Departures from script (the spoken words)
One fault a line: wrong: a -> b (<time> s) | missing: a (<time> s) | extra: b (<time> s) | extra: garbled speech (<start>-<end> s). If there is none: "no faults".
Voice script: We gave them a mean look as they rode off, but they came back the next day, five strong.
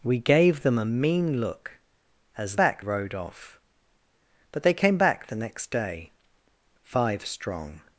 wrong: they -> back (2.6 s)